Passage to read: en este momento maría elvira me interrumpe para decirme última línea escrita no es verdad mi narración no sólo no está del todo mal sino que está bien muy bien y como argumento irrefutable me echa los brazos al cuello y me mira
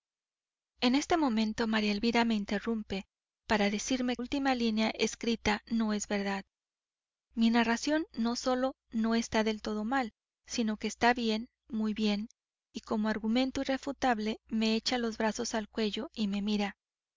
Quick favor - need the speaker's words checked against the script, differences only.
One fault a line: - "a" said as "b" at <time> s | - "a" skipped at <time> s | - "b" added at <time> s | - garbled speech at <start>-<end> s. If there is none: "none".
none